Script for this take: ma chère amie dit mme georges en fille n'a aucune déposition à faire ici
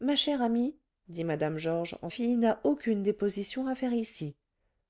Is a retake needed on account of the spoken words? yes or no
no